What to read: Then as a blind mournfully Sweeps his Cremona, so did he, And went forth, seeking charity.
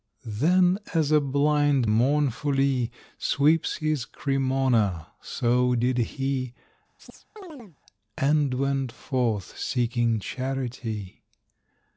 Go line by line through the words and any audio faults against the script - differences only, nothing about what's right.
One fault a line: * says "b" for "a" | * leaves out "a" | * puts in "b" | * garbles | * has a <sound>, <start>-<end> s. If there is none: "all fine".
* has a chirp, 7.0-7.8 s